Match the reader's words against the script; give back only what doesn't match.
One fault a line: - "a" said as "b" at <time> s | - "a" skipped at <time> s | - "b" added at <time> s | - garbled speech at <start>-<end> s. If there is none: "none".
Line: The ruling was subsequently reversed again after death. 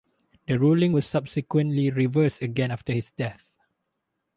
- "his" added at 2.9 s